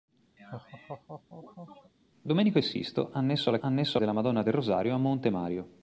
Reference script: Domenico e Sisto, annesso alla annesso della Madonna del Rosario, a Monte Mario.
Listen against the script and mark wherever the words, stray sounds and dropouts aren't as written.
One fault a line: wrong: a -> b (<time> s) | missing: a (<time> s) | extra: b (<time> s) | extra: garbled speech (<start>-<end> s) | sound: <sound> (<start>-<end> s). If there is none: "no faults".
sound: laugh (0.4-1.9 s)